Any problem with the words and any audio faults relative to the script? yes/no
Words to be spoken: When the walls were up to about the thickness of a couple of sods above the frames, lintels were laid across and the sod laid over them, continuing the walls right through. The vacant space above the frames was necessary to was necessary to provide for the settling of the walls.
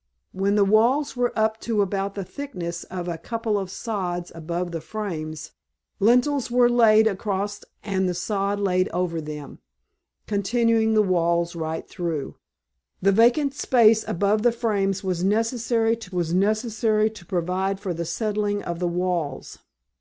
no